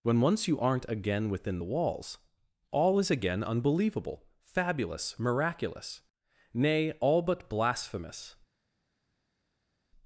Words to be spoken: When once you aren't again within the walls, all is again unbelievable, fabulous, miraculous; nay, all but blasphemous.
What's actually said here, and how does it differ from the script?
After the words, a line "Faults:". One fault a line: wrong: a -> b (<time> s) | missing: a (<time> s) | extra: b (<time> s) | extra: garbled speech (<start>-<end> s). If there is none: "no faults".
When once you aren't again within the walls, all is again unbelievable, fabulous, miraculous; nay, all but blasphemous.
Faults:
no faults